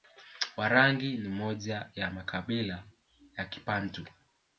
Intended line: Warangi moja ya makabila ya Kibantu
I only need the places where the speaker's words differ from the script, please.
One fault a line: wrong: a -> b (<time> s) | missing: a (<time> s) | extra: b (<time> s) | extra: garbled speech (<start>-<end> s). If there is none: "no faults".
extra: ni (1.2 s)